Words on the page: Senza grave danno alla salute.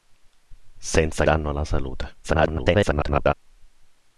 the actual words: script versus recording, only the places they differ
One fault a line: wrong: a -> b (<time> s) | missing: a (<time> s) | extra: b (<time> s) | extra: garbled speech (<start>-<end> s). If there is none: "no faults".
missing: grave (1.2 s)
extra: garbled speech (2.2-3.3 s)